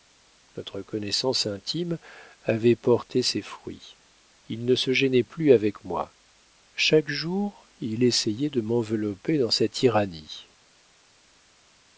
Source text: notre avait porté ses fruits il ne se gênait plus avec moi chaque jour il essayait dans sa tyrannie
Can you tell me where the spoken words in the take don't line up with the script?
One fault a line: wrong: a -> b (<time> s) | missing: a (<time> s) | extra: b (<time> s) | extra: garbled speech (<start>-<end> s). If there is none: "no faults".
extra: connaissance intime (0.8 s)
extra: de m'envelopper (8.5 s)